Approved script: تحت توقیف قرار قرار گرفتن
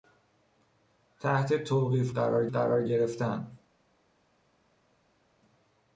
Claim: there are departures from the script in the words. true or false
false